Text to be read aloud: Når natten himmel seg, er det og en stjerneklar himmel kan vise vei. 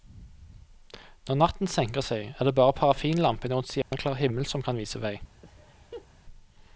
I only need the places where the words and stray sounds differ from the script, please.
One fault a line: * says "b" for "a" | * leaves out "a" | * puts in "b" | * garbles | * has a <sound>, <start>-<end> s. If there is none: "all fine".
* says "senker" for "himmel"
* puts in "bare parafinlampene"
* has a dropout, 3.8-3.9 s
* puts in "som"
* has a laugh, 5.4-6.1 s